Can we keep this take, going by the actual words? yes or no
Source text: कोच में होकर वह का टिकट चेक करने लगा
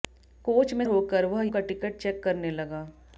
yes